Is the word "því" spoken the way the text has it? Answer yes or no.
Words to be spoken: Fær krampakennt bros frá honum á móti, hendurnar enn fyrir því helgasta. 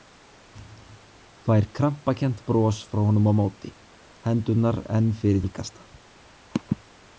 no